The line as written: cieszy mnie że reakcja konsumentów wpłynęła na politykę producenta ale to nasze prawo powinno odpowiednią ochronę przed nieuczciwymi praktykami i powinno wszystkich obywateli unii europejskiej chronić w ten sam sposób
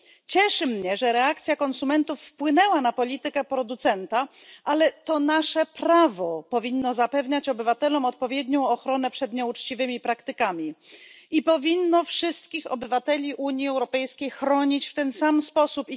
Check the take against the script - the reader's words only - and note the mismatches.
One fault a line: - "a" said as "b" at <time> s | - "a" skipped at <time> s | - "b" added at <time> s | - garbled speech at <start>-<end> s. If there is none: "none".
- "zapewniać obywatelom" added at 6.9 s